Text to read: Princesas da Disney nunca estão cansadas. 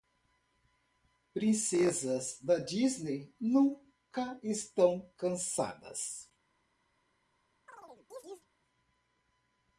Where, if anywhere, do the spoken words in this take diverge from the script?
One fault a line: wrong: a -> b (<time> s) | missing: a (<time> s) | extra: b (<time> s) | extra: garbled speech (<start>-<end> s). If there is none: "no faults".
no faults